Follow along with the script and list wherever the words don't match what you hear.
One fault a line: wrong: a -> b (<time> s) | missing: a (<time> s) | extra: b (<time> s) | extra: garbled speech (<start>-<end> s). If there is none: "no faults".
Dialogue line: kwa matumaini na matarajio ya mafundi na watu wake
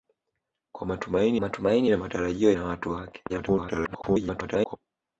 extra: matumaini (1.4 s)
missing: ya mafundi (2.5 s)
extra: garbled speech (3.3-4.8 s)